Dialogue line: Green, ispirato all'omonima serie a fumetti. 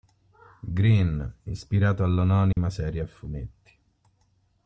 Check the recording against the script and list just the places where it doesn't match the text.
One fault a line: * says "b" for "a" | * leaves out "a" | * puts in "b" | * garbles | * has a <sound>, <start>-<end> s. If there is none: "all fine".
* has a dropout, 2.5-2.6 s